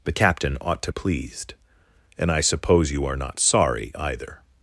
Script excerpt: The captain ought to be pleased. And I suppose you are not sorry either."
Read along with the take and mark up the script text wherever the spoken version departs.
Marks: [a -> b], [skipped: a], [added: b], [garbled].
The captain ought to [skipped: be] pleased. And I suppose you are not sorry either."